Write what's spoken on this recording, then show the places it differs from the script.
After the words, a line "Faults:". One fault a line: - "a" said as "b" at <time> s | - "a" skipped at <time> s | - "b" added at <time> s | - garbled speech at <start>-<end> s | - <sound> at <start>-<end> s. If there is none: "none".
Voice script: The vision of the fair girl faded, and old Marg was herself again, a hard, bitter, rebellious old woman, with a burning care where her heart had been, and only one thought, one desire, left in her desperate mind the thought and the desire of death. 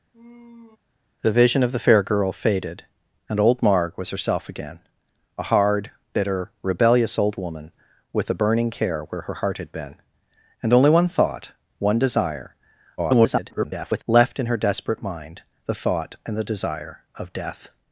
The vision of the fair girl faded, and old Marg was herself again, a hard, bitter, rebellious old woman, with a burning care where her heart had been, and only one thought, one desire, [garbled] left in her desperate mind the thought and the desire of death.
Faults:
- sigh at 0.1-0.8 s
- garbled speech at 13.0-14.0 s